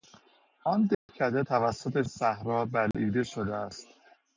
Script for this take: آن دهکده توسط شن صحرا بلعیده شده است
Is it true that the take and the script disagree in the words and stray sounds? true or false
true